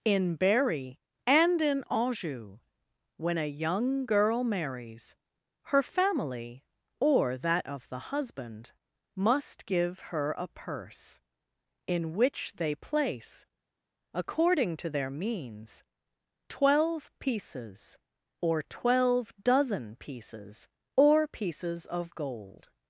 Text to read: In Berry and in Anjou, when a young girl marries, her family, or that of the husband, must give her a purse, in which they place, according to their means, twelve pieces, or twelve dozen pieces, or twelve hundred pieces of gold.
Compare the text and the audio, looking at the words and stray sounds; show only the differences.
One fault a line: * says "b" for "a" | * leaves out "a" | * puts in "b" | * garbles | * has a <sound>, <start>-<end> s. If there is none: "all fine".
* leaves out "twelve hundred"